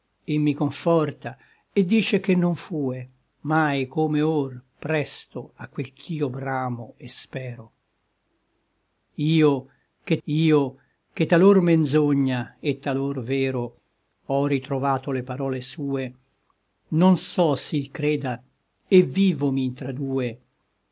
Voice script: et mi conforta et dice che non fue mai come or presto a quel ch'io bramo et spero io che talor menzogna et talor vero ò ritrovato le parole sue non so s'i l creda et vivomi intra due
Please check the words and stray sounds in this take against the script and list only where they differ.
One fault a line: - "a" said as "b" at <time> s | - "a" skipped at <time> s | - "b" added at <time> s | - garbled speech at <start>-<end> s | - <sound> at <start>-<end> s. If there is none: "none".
- "io che" added at 10.3 s